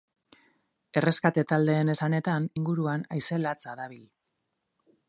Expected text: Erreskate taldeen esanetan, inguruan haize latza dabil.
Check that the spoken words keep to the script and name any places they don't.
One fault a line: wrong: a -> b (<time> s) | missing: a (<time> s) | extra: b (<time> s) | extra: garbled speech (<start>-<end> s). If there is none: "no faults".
no faults